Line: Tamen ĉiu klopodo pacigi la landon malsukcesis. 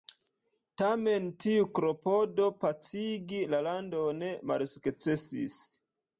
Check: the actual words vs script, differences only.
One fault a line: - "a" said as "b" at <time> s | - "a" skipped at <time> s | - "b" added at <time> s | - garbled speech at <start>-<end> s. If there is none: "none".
- "ĉiu" said as "tiu" at 1.4 s